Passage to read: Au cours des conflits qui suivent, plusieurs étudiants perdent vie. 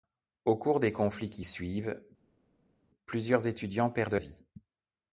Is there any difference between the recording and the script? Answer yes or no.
no